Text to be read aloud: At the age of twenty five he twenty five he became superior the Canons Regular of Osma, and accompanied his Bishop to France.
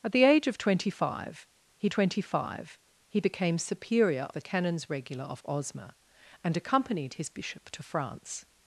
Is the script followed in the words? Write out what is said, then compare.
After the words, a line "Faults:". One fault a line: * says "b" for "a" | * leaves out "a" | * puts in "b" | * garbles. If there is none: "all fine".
At the age of twenty five he twenty five he became superior the Canons Regular of Osma, and accompanied his Bishop to France.
Faults:
all fine